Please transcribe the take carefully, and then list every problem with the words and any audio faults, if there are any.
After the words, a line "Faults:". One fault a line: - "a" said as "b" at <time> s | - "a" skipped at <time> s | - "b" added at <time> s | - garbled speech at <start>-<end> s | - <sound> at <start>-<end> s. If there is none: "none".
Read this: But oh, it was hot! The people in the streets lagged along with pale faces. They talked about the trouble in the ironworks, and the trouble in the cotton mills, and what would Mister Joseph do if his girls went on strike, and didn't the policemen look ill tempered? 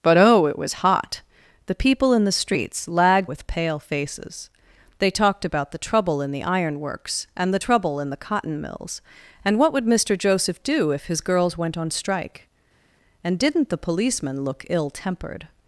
But oh, it was hot! The people in the streets lagged with pale faces. They talked about the trouble in the ironworks, and the trouble in the cotton mills, and what would Mister Joseph do if his girls went on strike, and didn't the policemen look ill tempered?
Faults:
- "along" skipped at 3.3 s